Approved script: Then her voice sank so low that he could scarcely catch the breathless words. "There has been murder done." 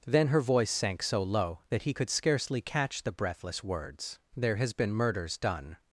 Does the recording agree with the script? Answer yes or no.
no